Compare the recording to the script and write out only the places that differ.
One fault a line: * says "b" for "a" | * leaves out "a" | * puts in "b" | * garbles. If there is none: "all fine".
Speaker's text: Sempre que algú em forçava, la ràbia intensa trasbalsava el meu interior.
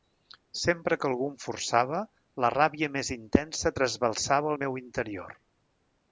* puts in "més"